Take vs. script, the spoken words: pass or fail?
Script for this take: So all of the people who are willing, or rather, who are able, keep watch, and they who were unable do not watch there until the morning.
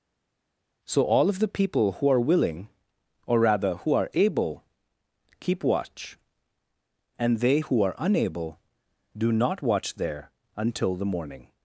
fail